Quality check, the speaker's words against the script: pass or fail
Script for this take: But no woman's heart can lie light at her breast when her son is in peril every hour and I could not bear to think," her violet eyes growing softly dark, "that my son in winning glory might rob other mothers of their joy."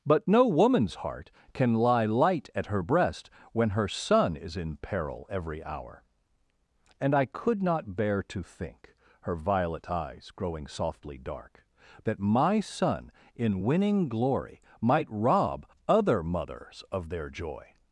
pass